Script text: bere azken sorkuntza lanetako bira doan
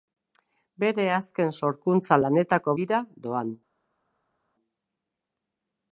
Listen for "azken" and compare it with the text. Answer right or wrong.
right